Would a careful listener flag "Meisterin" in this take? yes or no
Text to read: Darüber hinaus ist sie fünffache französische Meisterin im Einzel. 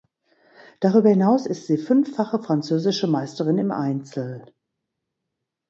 no